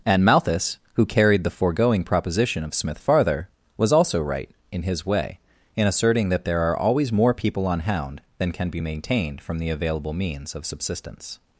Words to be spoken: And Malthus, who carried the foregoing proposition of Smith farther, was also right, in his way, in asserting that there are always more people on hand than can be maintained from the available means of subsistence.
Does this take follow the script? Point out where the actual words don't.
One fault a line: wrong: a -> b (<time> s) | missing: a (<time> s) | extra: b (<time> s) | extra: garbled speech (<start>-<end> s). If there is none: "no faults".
wrong: hand -> hound (7.8 s)